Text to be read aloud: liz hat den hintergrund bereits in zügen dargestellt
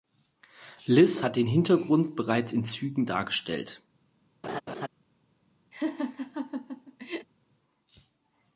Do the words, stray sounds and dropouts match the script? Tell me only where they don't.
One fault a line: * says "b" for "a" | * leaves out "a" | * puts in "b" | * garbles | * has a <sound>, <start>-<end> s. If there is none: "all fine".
* has a laugh, 4.4-4.9 s
* has a laugh, 5.7-7.3 s